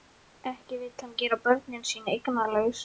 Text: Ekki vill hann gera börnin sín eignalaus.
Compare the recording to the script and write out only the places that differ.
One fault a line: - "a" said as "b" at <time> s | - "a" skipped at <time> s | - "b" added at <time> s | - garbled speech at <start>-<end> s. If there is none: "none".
none